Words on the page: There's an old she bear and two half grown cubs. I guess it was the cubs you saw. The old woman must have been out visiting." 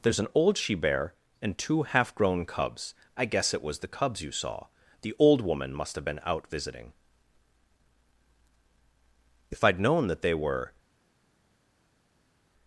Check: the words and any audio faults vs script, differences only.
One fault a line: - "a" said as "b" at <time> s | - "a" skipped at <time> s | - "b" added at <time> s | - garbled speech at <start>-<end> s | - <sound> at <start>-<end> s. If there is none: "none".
- "If I'd known that they were" added at 9.5 s